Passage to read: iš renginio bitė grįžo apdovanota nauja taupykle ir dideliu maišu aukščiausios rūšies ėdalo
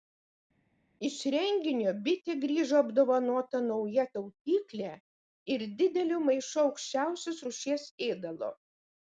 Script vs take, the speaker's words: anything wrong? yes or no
no